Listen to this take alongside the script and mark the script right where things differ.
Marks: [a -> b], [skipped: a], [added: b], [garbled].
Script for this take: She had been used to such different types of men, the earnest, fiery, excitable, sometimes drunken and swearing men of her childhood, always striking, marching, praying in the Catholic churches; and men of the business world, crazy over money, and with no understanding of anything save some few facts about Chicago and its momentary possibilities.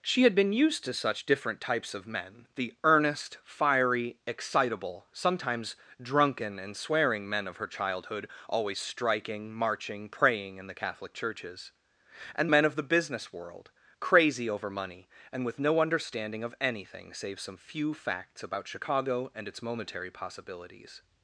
She had been used to such different types of men, the earnest, fiery, excitable, sometimes drunken and swearing men of her childhood, always striking, marching, praying in the Catholic churches; and men of the business world, crazy over money, and with no understanding of anything save some few facts about Chicago and its momentary possibilities.